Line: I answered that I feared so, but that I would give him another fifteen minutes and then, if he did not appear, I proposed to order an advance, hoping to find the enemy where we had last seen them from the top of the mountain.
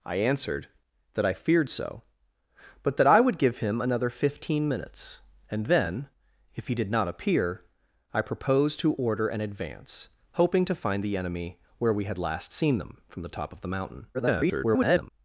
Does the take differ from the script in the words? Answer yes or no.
yes